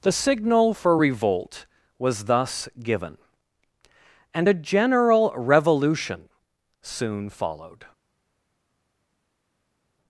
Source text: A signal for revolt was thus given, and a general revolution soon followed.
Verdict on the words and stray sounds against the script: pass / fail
fail